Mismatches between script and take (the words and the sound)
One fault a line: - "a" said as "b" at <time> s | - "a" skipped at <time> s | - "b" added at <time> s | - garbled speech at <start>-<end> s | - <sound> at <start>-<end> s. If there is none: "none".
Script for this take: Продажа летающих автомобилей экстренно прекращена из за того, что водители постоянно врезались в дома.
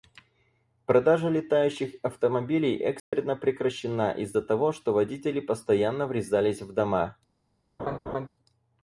- dropout at 3.0-3.1 s
- laugh at 7.8-8.3 s